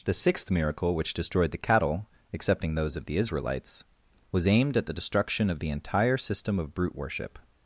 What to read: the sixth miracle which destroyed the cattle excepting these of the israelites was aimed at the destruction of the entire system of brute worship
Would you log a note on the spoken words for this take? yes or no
yes